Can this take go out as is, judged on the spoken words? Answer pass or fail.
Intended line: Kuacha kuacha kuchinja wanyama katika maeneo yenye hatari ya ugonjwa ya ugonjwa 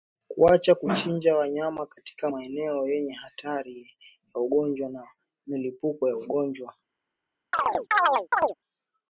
fail